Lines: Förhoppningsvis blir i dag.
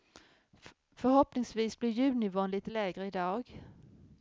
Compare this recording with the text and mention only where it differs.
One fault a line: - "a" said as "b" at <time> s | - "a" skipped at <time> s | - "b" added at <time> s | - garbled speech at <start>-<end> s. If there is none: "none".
- "ljudnivån lite lägre" added at 1.9 s